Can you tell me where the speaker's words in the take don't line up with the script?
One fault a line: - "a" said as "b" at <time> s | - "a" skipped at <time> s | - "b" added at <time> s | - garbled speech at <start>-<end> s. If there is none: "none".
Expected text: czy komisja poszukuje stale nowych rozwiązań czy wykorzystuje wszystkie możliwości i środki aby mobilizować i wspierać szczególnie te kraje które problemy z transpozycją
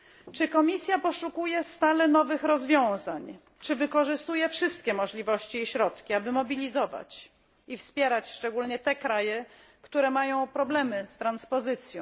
- "mają" added at 10.1 s